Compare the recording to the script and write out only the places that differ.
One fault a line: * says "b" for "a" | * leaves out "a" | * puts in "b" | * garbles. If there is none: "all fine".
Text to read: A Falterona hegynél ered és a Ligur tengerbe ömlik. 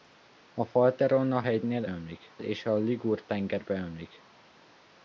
* says "ömlik" for "ered"